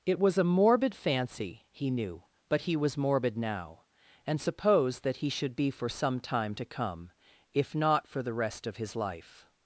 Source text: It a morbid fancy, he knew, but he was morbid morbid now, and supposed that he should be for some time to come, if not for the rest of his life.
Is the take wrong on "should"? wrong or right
right